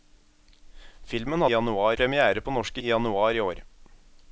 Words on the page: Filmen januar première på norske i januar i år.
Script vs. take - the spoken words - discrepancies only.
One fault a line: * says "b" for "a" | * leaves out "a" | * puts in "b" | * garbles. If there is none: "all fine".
all fine